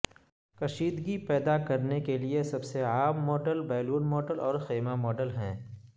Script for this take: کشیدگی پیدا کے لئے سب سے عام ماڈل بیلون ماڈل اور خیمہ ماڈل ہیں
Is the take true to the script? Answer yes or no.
no